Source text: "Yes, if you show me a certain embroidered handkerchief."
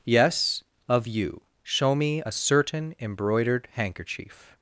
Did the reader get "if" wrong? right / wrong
wrong